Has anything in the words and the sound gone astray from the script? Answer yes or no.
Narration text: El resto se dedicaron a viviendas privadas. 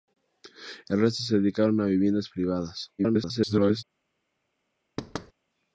yes